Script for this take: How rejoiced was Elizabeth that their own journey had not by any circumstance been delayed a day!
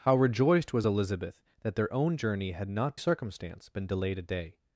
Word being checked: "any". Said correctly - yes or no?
no